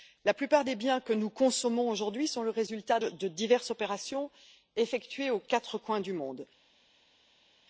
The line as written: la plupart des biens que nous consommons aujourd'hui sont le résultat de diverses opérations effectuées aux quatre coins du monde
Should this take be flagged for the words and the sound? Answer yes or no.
no